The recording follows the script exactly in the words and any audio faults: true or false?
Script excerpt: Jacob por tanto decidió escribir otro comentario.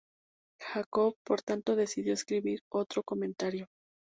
true